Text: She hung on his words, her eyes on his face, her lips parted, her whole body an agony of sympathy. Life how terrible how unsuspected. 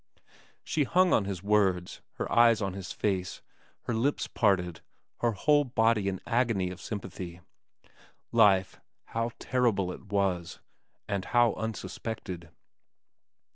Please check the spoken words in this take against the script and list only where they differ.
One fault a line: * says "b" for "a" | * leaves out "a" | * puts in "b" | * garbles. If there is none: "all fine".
* puts in "it was and"